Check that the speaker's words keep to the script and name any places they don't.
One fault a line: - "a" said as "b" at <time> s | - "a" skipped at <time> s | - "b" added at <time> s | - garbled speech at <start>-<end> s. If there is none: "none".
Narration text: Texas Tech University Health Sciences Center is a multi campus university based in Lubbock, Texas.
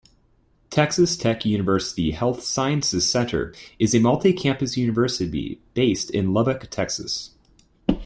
none